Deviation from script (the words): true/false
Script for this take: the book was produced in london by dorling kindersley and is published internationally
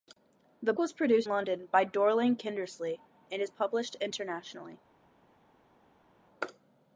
true